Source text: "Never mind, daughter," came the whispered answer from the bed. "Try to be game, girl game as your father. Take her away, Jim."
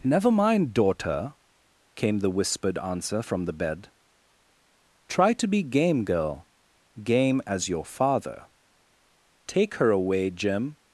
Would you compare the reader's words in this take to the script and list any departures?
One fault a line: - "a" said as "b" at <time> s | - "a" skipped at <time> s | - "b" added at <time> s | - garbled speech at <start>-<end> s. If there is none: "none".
none